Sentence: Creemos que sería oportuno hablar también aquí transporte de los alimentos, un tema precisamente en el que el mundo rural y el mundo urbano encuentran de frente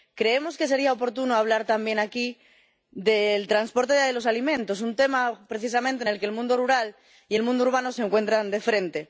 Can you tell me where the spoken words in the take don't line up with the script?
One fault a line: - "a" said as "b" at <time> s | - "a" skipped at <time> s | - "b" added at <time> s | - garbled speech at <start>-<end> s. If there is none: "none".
- "del" added at 2.9 s
- "se" added at 7.9 s